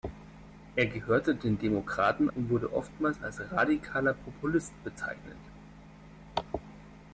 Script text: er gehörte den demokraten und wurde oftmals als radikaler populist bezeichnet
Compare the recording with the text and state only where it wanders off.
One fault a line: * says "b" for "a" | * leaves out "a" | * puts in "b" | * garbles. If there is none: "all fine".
all fine